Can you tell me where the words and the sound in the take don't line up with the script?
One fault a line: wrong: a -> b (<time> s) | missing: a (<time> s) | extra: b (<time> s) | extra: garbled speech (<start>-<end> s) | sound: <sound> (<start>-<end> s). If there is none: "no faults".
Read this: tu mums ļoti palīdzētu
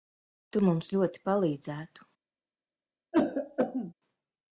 sound: throat clearing (3.1-3.9 s)